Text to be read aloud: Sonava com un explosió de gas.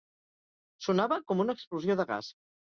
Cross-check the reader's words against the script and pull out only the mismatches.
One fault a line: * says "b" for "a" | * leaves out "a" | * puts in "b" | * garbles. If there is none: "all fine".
* says "una" for "un"